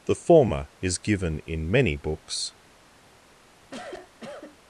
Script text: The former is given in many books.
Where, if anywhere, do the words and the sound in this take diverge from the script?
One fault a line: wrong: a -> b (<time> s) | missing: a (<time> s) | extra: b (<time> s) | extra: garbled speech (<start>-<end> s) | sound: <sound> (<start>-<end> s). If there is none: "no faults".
sound: cough (3.6-4.6 s)